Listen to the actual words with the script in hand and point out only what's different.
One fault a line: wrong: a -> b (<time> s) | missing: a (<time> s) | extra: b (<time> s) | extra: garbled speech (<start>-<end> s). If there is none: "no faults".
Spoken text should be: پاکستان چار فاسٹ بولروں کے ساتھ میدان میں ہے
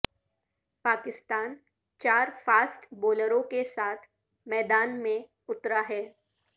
extra: اترا (5.5 s)